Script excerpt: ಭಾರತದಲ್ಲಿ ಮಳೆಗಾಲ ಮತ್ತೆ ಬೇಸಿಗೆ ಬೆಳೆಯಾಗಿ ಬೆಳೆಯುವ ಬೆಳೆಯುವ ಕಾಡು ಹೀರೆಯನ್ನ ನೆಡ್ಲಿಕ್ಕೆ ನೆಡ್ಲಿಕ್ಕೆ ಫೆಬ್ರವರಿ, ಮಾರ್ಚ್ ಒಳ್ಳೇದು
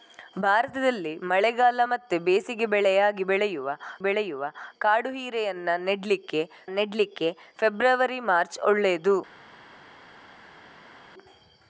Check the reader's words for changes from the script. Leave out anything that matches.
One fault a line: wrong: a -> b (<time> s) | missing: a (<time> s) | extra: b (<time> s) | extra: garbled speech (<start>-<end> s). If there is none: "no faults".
no faults